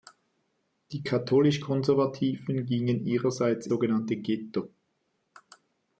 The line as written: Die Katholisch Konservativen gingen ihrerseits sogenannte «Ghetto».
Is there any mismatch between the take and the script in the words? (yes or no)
no